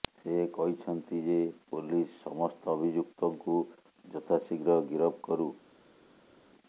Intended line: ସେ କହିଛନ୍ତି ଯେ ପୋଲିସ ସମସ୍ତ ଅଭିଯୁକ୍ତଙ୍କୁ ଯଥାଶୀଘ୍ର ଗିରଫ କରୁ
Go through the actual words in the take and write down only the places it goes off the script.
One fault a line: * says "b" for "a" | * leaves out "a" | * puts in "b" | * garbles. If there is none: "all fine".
all fine